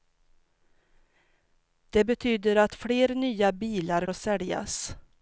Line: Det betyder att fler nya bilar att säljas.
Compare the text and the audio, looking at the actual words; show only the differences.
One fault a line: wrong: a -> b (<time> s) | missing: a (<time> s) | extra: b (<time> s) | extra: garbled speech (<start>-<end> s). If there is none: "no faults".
no faults